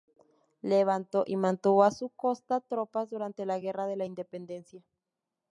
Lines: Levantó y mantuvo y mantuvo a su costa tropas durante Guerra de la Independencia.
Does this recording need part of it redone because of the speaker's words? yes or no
yes